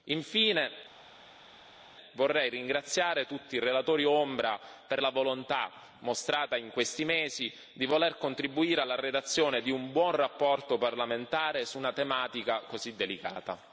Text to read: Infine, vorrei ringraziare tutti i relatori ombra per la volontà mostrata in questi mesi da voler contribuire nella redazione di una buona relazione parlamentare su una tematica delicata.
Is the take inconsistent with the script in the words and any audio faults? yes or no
yes